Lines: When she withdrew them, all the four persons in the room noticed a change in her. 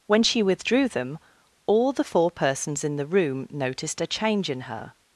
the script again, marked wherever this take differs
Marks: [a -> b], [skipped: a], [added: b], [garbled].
When she withdrew them, all the four persons in the room noticed a change in her.